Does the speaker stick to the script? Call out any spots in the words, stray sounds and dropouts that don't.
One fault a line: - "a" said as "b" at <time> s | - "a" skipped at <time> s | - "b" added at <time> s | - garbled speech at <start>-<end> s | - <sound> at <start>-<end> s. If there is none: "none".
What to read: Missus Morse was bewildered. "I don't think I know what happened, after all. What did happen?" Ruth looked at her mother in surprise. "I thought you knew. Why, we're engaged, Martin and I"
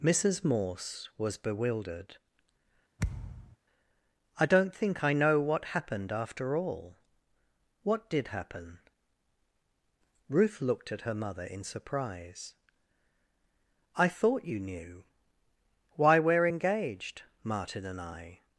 - thud at 3.0-3.6 s